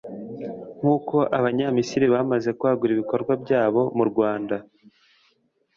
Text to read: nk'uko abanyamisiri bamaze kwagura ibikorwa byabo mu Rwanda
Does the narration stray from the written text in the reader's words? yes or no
no